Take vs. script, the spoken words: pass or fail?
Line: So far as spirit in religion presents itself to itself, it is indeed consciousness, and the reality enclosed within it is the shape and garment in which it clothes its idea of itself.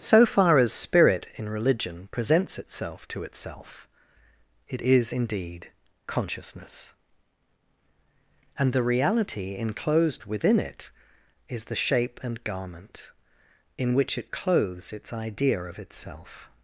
pass